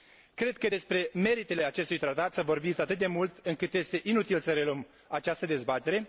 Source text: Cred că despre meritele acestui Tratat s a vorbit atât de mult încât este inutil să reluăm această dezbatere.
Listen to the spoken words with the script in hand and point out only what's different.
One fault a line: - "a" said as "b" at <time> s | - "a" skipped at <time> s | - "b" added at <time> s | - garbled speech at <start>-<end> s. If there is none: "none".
none